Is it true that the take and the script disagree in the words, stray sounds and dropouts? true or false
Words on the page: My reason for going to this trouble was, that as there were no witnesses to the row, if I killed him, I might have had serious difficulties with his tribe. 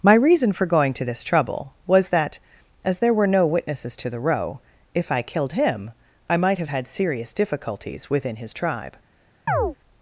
true